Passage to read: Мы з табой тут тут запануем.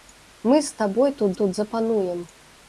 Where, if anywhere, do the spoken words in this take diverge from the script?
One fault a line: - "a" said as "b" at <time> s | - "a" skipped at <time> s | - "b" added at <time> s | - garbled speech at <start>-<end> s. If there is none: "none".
none